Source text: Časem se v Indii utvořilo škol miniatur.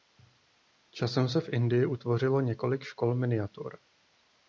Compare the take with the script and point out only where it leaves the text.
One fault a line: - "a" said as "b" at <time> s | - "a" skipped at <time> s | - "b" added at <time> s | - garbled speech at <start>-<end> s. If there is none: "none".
- "několik" added at 2.4 s